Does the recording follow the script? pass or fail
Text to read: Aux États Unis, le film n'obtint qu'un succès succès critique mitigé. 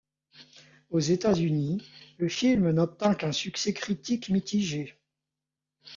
fail